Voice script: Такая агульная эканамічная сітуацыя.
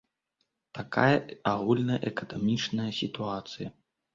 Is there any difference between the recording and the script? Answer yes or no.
no